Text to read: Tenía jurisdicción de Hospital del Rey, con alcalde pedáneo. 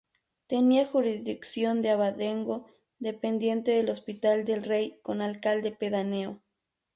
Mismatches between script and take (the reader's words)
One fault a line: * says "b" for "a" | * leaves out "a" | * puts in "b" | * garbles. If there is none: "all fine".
* puts in "abadengo dependiente del"